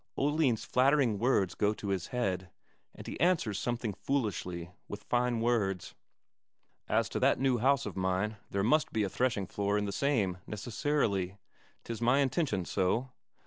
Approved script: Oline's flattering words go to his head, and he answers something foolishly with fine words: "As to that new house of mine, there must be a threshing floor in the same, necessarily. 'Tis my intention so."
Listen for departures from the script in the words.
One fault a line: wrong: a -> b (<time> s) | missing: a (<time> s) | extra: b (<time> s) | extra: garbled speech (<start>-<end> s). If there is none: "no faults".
no faults